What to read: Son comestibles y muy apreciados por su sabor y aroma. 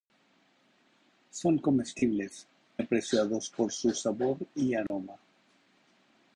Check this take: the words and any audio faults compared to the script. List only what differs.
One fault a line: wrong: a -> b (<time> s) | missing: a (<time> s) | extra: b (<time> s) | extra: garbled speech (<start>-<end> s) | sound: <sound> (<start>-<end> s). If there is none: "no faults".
missing: y muy (2.5 s)
sound: dropout (4.9-4.9 s)